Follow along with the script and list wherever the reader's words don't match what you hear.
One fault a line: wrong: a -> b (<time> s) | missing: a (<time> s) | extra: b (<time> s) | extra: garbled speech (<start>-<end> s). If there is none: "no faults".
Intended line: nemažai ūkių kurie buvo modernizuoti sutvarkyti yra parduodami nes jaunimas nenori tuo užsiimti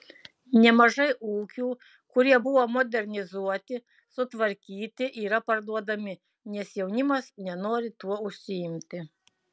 no faults